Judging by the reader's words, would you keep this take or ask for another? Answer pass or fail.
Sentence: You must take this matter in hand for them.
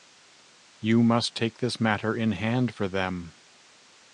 pass